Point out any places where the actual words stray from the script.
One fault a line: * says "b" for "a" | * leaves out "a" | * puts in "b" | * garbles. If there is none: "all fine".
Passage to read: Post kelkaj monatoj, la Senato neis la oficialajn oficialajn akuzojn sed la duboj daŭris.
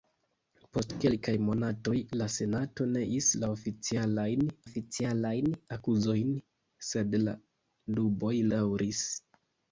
all fine